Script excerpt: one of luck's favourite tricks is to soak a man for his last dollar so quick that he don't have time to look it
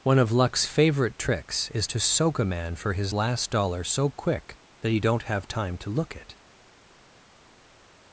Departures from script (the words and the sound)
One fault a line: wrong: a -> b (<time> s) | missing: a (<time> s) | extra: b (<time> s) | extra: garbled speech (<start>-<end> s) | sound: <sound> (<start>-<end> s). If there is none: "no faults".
no faults